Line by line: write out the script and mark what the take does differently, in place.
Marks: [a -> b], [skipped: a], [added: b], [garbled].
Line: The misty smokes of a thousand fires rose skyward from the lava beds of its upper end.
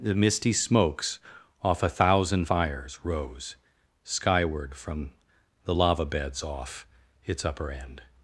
The misty smokes [of -> off] a thousand fires rose skyward from the lava beds [of -> off] its upper end.